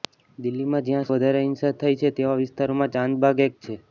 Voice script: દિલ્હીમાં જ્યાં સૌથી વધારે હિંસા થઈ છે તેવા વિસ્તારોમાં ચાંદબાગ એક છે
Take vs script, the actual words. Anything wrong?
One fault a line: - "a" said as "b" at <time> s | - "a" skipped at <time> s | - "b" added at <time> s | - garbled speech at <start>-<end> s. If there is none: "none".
- "સૌથી" skipped at 1.1 s